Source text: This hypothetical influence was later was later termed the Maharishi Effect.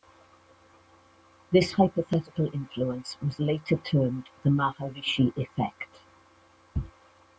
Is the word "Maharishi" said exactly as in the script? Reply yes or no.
yes